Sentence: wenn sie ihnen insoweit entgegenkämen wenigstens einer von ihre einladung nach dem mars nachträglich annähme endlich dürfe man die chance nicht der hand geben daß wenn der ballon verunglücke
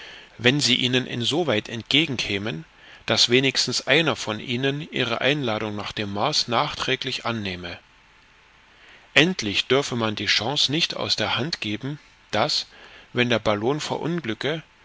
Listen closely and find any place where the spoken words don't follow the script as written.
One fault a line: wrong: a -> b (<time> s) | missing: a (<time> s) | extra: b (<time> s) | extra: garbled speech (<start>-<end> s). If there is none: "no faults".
extra: daß (3.0 s)
extra: ihnen (4.4 s)
extra: aus (10.9 s)